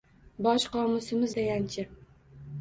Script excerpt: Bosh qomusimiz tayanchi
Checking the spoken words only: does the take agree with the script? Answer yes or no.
yes